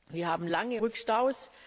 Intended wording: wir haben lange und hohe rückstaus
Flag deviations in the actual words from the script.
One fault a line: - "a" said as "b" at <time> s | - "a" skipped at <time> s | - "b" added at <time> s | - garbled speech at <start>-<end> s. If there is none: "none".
- "und hohe" skipped at 0.8 s